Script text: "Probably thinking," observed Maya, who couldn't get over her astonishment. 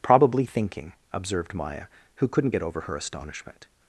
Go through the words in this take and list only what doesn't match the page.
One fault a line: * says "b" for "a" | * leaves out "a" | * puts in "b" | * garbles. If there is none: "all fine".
all fine